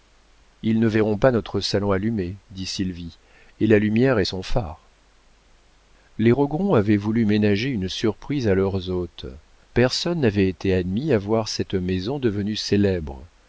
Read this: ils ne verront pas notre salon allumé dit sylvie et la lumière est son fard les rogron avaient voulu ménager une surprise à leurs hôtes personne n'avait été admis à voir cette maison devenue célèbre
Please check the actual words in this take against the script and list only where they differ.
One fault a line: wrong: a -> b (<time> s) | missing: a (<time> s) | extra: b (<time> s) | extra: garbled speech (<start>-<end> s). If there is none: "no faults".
no faults